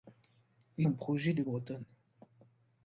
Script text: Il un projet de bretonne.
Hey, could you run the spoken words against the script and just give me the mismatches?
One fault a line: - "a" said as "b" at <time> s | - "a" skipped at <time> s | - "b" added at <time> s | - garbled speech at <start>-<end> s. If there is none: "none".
none